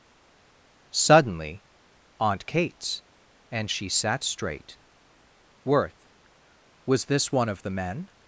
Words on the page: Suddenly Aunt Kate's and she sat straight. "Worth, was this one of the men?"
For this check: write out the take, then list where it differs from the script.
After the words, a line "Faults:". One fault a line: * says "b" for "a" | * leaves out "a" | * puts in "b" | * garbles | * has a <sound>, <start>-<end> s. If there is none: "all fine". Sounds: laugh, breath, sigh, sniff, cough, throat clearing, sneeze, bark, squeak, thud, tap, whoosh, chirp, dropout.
Suddenly Aunt Kate's and she sat straight. "Worth, was this one of the men?"
Faults:
all fine